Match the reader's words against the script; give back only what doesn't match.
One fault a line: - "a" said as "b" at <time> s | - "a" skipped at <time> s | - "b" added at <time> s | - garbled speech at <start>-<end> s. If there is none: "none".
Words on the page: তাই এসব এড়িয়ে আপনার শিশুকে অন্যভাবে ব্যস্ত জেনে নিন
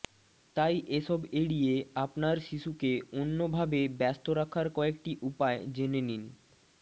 - "রাখার কয়েকটি উপায়" added at 4.4 s